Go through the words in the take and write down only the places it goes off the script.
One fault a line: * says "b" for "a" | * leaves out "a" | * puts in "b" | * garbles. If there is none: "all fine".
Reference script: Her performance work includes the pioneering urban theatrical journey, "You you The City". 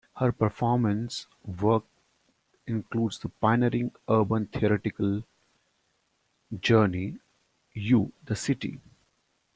* leaves out "you"